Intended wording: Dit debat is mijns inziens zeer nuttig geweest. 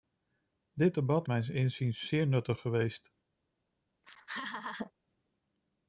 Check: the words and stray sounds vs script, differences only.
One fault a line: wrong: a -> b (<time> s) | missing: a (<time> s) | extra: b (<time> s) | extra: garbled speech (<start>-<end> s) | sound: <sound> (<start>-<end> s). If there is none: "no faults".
missing: is (1.3 s)
sound: laugh (4.0-4.9 s)